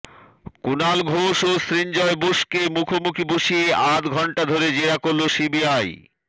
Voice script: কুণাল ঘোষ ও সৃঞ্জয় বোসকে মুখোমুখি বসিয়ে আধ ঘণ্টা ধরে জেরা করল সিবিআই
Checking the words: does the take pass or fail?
pass